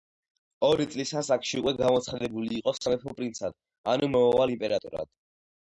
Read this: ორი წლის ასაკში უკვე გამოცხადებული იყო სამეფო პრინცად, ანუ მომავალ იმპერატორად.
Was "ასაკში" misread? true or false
false